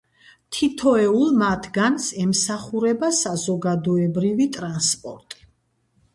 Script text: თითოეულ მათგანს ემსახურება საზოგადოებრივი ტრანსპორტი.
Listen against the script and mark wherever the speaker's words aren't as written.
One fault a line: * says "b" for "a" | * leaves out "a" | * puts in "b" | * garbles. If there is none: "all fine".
all fine